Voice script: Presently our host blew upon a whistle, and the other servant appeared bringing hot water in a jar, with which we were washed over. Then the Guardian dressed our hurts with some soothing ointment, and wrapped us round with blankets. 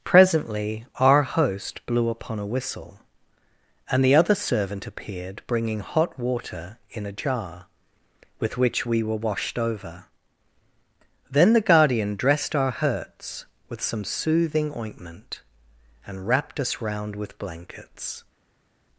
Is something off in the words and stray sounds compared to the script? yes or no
no